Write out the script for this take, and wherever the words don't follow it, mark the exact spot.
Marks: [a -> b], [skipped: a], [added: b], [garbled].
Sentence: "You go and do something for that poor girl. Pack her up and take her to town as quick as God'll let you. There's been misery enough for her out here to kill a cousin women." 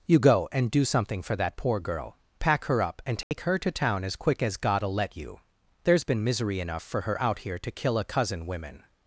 "You go and do something for that poor girl. Pack her up and take her to town as quick as God'll let you. There's been misery enough for her out here to kill a cousin women."